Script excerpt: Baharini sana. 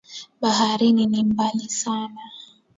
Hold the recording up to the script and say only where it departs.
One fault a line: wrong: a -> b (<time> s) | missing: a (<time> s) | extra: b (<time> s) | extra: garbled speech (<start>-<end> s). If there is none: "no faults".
extra: ni mbali (1.1 s)